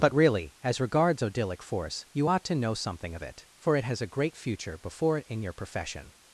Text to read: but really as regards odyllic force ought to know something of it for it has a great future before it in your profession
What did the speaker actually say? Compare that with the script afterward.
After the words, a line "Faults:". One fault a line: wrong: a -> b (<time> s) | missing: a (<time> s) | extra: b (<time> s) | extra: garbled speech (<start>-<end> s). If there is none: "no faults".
but really as regards odyllic force you ought to know something of it for it has a great future before it in your profession
Faults:
extra: you (2.1 s)